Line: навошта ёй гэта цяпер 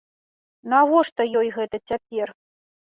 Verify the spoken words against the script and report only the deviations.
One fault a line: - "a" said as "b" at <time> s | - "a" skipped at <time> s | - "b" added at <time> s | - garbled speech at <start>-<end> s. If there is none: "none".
none